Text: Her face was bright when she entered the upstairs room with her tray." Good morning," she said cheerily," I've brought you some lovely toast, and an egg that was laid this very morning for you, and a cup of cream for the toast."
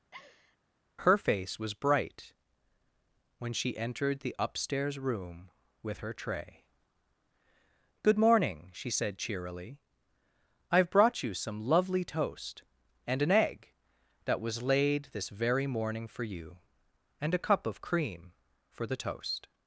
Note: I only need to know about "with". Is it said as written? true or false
true